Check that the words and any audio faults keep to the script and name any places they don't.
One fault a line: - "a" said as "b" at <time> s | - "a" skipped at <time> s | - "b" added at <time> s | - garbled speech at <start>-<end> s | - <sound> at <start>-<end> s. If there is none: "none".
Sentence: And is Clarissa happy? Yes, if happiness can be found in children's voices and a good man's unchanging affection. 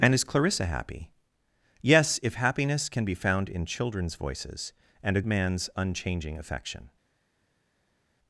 - "good" skipped at 5.2 s